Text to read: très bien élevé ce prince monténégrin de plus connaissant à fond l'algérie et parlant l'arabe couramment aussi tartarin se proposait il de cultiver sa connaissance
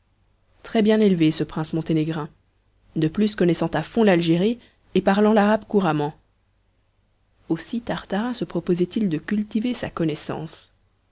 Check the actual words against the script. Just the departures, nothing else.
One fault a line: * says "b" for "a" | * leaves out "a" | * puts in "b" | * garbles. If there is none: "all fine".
all fine